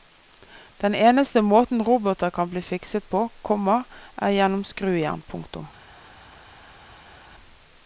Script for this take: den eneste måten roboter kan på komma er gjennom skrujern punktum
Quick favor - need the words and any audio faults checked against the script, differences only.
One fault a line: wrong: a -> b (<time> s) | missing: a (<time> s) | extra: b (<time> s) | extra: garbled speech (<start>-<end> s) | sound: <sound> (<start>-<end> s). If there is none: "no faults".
extra: bli fikset (2.5 s)